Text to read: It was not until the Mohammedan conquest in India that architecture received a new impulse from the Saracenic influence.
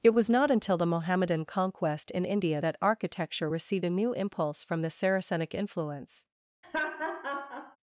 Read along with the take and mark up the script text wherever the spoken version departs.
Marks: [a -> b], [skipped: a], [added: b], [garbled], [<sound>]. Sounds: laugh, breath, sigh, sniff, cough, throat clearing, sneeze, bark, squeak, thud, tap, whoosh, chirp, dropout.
It was not until the Mohammedan conquest in India that architecture received a new impulse from the Saracenic influence. [laugh]